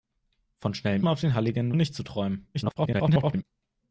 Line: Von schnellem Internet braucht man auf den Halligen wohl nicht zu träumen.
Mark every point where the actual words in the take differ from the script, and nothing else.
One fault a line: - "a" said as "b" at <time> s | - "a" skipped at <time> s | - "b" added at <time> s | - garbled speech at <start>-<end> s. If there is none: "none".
- "Internet braucht" skipped at 1.1 s
- "wohl" skipped at 1.7 s
- garbled speech at 2.5-3.4 s